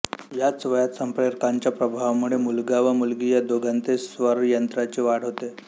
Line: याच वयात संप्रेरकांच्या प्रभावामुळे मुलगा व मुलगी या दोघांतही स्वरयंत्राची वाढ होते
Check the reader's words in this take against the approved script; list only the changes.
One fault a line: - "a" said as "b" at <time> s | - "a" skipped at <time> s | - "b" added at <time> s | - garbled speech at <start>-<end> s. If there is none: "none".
none